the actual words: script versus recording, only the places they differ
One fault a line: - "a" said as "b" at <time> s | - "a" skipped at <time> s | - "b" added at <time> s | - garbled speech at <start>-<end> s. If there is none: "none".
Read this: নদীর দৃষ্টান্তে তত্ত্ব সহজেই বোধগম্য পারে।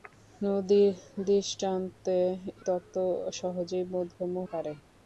none